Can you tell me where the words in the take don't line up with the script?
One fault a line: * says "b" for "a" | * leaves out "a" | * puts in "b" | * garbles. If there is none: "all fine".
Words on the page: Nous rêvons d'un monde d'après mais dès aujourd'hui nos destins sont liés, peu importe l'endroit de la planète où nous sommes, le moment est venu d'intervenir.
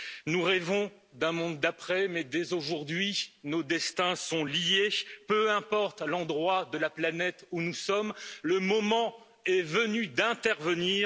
all fine